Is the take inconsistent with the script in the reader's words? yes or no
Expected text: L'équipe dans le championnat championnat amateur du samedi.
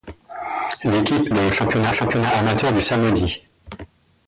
no